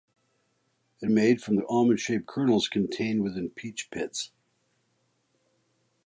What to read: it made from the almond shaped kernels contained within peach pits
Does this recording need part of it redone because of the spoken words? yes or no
no